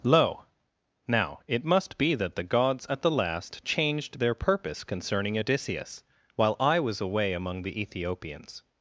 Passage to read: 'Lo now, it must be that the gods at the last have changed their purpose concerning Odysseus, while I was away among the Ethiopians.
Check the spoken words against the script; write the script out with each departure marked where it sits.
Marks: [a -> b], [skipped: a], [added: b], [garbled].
'Lo now, it must be that the gods at the last [skipped: have] changed their purpose concerning Odysseus, while I was away among the Ethiopians.